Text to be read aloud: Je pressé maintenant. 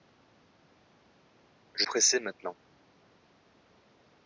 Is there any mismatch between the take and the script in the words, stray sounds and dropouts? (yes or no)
no